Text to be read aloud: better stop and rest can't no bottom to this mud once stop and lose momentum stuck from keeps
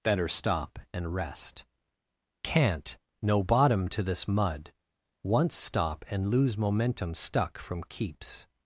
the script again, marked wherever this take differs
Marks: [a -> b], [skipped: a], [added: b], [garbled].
better stop and rest can't no bottom to this mud once stop and lose momentum stuck from keeps